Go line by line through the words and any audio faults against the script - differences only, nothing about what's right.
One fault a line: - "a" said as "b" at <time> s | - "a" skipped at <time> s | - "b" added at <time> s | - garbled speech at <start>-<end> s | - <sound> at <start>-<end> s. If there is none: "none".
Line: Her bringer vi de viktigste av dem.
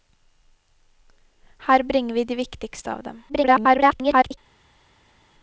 - garbled speech at 3.3-4.4 s